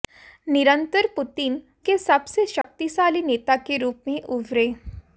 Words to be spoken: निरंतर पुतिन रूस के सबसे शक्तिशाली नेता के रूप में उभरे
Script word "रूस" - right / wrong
wrong